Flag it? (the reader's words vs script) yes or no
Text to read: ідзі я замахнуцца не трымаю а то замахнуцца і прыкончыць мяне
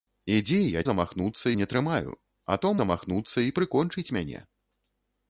no